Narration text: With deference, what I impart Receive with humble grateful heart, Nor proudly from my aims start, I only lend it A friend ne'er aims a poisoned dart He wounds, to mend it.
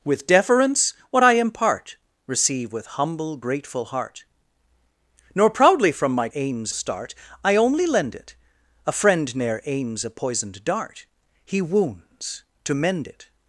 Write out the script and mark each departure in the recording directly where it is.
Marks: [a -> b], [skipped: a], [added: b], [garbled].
With deference, what I impart Receive with humble grateful heart, Nor proudly from my aims start, I only lend it A friend ne'er aims a poisoned dart He wounds, to mend it.